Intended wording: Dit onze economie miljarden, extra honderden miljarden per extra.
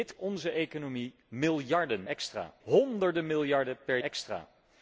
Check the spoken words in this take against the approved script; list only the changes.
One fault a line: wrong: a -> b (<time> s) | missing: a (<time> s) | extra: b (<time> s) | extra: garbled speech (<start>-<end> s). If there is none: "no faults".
no faults